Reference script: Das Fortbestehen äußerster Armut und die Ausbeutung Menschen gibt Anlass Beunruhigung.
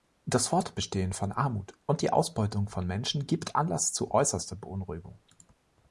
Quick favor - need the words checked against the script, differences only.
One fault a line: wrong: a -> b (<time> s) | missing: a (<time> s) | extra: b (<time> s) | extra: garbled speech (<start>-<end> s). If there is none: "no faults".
wrong: äußerster -> von (1.1 s)
extra: von (2.7 s)
extra: zu äußerster (3.9 s)